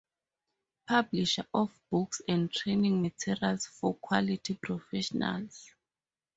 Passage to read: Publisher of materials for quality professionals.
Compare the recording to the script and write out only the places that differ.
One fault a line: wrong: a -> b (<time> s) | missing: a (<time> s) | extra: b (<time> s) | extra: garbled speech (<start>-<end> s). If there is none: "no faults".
extra: books and training (1.9 s)